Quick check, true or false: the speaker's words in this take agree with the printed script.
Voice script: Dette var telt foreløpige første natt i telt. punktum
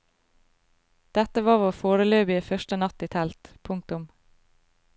false